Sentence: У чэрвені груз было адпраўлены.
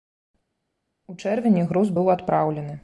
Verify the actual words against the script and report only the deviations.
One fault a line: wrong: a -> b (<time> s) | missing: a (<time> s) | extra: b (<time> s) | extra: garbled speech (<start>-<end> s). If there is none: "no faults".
wrong: было -> быў (2.0 s)